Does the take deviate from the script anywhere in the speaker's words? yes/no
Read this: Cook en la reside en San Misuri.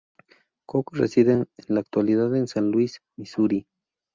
yes